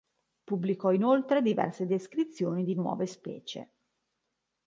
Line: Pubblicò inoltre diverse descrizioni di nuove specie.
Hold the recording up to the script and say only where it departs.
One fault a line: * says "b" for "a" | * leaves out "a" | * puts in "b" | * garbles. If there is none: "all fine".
all fine